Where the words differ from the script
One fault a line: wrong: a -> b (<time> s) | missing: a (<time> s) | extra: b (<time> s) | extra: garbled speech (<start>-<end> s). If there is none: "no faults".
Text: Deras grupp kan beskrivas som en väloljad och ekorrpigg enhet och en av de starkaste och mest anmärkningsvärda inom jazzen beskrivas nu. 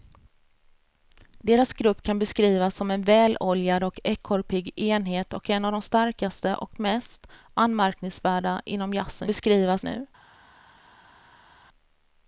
no faults